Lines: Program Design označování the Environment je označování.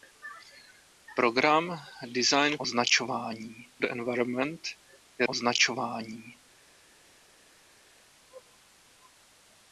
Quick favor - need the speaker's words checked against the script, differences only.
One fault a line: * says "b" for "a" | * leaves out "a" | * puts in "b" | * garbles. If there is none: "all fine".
all fine